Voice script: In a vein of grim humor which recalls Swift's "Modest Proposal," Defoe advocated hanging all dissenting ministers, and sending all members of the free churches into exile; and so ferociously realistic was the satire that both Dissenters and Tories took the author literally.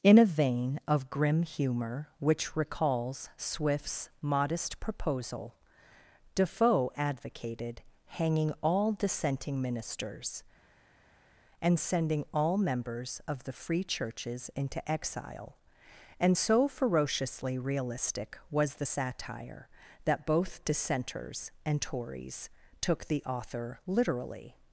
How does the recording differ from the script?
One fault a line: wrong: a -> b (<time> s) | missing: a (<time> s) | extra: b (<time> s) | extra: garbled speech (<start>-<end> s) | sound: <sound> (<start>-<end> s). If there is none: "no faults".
no faults